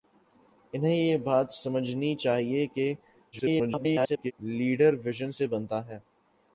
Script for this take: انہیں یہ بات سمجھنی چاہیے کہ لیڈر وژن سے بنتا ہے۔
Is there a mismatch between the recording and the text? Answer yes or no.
yes